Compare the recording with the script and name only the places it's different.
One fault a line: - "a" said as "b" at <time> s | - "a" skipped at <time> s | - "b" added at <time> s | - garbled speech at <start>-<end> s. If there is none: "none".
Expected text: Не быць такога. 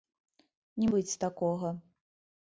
none